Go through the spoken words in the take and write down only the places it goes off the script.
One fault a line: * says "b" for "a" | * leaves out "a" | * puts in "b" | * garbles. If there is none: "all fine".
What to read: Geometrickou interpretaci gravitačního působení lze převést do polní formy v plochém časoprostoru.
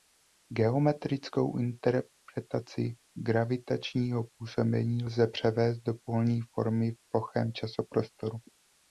all fine